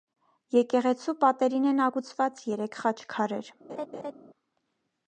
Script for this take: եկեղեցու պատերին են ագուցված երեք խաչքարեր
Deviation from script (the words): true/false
false